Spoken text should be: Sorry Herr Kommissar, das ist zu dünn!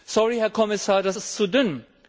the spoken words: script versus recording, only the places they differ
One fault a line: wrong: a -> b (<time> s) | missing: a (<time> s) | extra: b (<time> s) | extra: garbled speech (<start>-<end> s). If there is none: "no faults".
no faults